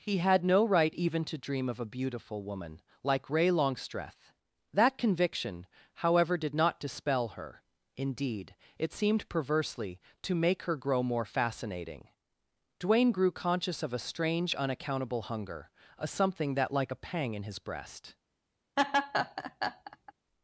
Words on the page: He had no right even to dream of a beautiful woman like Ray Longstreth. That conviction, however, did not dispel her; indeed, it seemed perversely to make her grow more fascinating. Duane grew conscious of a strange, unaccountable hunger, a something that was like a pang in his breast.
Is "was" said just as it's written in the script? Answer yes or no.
no